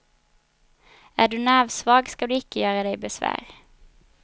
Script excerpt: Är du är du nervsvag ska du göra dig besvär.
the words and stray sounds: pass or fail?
fail